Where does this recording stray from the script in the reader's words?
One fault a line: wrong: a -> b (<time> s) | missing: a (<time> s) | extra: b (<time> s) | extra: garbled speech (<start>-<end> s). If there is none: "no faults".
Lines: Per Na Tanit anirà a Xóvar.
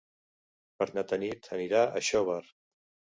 no faults